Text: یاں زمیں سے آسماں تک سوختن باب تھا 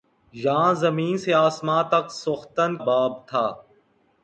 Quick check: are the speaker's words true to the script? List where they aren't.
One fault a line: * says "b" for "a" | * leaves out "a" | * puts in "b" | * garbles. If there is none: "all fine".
all fine